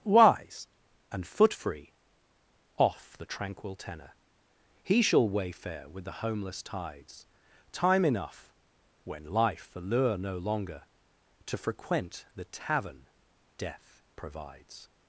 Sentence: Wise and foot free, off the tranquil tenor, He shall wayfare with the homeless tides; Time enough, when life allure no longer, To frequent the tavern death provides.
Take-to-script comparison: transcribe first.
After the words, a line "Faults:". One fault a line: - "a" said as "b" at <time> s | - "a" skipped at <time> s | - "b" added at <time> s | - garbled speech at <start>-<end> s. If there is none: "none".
Wise and foot free, off the tranquil tenor, He shall wayfare with the homeless tides; Time enough, when life allure no longer, To frequent the tavern death provides.
Faults:
none